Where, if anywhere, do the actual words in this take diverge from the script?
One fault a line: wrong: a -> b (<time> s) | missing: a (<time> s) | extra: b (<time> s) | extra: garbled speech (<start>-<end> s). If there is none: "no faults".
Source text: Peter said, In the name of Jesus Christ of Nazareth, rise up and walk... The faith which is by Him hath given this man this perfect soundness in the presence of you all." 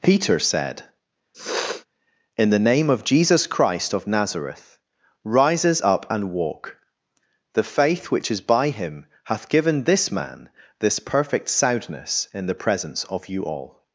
wrong: rise -> rises (5.2 s)